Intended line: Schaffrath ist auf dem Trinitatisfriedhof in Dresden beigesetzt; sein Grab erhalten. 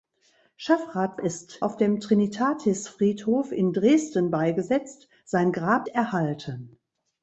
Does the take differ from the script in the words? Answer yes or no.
no